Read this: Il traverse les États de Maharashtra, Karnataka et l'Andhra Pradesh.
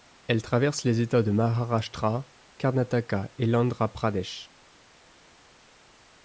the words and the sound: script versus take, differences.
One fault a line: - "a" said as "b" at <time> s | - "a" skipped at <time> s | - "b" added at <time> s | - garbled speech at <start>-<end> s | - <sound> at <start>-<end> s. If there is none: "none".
- "Il" said as "Elle" at 0.2 s